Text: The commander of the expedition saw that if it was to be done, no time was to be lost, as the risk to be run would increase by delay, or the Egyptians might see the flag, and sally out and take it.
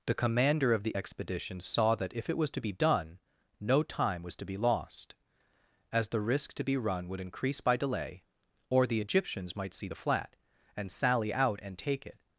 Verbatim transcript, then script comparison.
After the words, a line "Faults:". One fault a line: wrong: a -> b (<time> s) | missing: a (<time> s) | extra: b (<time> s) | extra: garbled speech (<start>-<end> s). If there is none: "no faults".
The commander of the expedition saw that if it was to be done, no time was to be lost, as the risk to be run would increase by delay, or the Egyptians might see the flat, and sally out and take it.
Faults:
wrong: flag -> flat (9.9 s)